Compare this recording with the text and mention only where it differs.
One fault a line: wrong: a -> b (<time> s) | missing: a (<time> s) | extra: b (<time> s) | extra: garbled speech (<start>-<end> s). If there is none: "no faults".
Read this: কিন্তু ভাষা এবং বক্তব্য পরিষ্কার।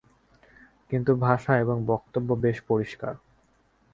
extra: বেশ (2.4 s)